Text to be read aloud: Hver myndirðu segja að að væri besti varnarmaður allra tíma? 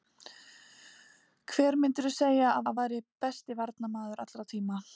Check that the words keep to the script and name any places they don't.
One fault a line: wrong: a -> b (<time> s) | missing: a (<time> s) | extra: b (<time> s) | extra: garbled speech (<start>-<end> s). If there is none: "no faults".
no faults